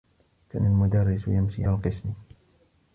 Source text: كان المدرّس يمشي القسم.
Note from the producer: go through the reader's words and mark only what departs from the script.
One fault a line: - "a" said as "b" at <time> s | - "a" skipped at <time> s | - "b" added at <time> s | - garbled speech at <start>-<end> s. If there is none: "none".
none